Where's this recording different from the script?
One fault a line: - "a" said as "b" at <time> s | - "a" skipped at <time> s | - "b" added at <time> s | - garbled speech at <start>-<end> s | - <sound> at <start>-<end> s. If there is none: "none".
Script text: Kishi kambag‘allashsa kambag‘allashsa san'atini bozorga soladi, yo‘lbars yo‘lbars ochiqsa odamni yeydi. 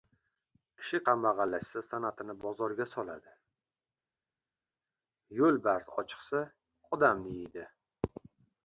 - "kambag‘allashsa" skipped at 1.8 s
- "yo‘lbars" skipped at 5.9 s